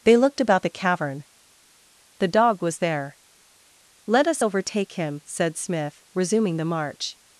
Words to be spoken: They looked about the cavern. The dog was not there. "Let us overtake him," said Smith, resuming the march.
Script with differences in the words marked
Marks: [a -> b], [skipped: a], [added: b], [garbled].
They looked about the cavern. The dog was [skipped: not] there. "Let us overtake him," said Smith, resuming the march.